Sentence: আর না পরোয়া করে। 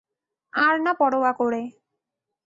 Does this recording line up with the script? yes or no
yes